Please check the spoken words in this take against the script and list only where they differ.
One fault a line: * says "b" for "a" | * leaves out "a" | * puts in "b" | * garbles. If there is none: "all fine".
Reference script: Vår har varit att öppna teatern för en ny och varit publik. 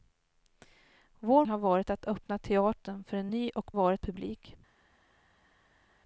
all fine